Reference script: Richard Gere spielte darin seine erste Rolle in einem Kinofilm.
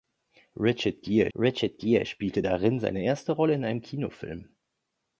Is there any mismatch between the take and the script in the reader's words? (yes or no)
yes